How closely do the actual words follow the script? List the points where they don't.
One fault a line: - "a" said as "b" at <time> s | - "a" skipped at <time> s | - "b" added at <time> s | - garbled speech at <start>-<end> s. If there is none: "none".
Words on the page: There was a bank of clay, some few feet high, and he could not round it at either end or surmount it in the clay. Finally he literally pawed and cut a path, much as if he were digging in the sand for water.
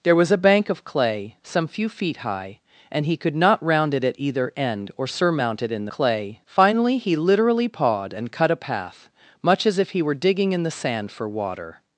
none